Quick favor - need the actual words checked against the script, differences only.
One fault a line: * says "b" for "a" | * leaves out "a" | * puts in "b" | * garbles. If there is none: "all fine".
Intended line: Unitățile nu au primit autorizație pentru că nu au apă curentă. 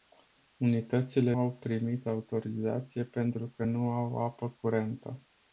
* leaves out "nu"